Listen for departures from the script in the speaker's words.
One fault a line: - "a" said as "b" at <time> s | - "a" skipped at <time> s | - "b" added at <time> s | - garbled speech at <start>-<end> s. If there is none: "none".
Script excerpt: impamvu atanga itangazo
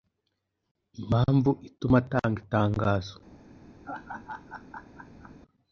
- "ituma" added at 1.7 s